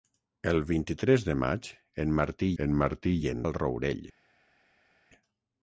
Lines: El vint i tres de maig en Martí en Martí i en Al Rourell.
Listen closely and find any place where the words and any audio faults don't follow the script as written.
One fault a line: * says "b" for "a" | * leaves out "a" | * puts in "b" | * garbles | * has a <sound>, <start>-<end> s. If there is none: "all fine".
all fine